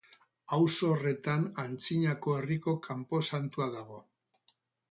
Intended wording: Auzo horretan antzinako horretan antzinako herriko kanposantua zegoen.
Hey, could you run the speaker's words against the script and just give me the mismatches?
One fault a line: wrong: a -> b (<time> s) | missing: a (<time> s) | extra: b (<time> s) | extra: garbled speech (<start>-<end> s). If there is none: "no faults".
missing: horretan antzinako (2.4 s)
wrong: zegoen -> dago (3.8 s)